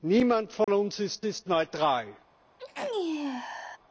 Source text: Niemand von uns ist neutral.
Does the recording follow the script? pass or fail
fail